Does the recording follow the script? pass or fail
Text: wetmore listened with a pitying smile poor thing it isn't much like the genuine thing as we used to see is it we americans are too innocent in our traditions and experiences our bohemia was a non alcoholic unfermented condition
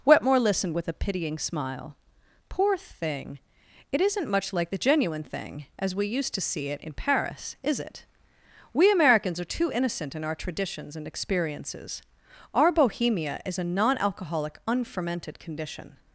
fail